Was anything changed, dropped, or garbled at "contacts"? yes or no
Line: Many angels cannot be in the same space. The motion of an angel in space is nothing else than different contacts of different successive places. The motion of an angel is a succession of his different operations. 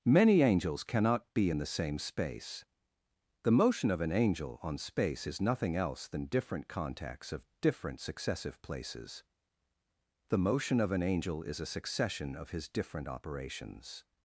no